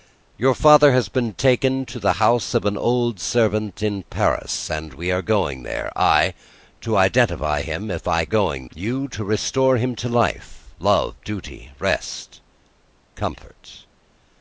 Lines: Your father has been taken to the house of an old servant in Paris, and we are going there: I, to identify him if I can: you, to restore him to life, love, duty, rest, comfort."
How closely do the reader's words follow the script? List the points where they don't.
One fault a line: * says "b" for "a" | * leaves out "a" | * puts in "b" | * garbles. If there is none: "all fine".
* says "going" for "can"